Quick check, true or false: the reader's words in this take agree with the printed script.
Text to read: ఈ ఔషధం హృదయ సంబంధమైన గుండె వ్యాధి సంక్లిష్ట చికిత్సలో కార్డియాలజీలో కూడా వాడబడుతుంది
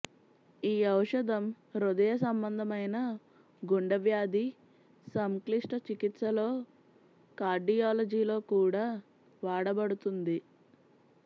true